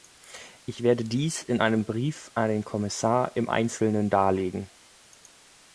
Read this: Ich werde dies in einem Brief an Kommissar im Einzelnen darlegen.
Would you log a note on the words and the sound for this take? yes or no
yes